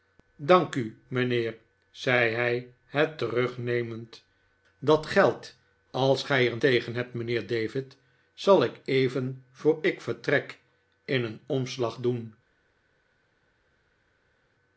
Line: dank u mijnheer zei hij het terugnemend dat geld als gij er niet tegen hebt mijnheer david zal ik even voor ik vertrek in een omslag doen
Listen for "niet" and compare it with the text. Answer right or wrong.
wrong